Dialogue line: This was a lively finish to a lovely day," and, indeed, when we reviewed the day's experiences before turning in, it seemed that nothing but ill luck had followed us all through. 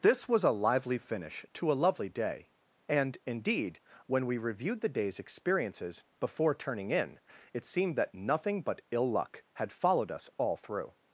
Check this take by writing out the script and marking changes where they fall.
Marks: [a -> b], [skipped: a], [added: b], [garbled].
This was a lively finish to a lovely day," and, indeed, when we reviewed the day's experiences before turning in, it seemed that nothing but ill luck had followed us all through.